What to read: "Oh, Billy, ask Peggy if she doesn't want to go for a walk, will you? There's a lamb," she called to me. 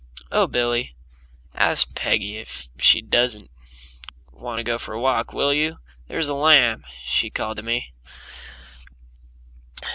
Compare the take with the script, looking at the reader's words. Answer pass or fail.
pass